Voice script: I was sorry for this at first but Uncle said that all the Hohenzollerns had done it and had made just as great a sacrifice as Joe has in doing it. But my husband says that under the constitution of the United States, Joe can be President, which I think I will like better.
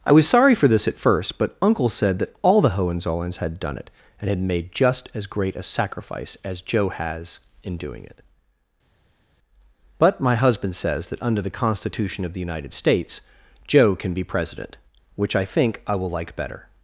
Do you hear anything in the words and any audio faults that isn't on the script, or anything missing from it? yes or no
no